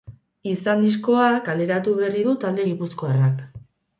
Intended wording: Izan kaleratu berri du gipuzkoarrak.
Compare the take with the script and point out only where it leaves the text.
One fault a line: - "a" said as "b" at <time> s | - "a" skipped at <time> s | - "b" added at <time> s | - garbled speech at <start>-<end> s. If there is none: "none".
- "diskoa" added at 0.8 s
- "talde" added at 2.5 s